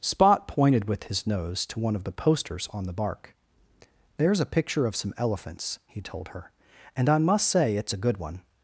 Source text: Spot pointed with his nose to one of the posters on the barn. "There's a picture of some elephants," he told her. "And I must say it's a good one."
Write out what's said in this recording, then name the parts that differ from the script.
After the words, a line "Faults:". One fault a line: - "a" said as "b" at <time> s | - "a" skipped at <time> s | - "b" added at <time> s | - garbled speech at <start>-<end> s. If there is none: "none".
Spot pointed with his nose to one of the posters on the bark. "There's a picture of some elephants," he told her. "And I must say it's a good one."
Faults:
- "barn" said as "bark" at 2.9 s